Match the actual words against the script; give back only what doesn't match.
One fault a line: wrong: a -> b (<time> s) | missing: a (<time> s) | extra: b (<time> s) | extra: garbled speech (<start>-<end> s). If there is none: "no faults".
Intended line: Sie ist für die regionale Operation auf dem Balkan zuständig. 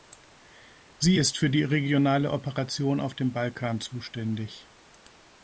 no faults